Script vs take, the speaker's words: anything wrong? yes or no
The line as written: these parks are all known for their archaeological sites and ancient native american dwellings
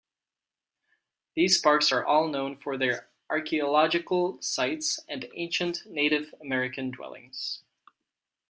no